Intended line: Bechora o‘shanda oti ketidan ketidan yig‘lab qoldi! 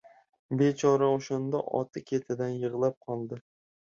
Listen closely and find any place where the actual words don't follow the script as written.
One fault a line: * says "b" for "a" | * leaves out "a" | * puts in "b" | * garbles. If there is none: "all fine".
* leaves out "ketidan"